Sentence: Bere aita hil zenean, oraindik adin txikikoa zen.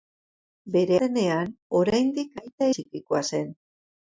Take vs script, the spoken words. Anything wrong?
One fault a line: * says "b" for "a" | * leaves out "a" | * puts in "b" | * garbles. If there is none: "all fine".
* leaves out "aita hil"
* says "aita" for "adin"